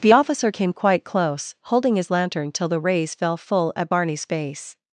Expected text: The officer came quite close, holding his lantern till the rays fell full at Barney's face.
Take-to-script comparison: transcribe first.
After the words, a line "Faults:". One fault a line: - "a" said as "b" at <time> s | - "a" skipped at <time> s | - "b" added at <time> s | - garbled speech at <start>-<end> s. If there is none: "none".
The officer came quite close, holding his lantern till the rays fell full at Barney's face.
Faults:
none